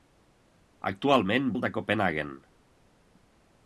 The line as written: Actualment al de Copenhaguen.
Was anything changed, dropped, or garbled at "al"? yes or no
no